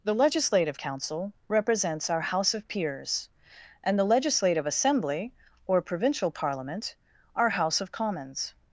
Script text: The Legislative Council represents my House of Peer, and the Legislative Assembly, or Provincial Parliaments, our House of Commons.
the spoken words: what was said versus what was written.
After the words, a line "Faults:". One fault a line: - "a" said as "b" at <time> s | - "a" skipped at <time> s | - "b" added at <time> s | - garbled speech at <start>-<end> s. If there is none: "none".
The Legislative Council represents our House of Peers, and the Legislative Assembly, or Provincial Parliament, our House of Commons.
Faults:
- "my" said as "our" at 2.1 s
- "Peer" said as "Peers" at 2.7 s
- "Parliaments" said as "Parliament" at 6.3 s